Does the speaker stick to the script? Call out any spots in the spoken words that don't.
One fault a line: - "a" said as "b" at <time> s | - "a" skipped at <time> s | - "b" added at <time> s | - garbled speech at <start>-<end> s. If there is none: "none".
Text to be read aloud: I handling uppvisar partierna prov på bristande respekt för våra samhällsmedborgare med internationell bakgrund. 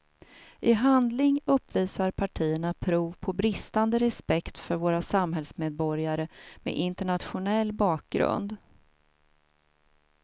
none